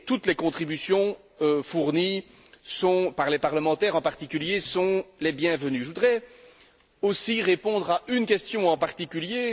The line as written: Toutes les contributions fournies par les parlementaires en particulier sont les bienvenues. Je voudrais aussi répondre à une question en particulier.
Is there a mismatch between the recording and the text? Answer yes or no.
no